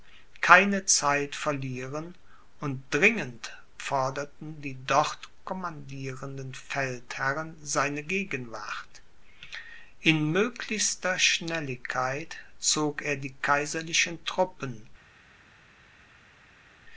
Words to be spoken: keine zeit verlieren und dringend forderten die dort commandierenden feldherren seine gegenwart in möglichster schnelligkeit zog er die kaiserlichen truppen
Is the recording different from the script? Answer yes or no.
no